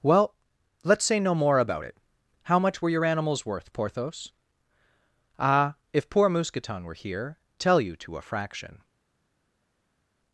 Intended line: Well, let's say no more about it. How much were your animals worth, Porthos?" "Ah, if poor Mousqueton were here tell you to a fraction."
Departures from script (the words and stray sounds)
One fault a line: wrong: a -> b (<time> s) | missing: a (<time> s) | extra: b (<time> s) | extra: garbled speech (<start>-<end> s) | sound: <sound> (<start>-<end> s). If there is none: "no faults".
no faults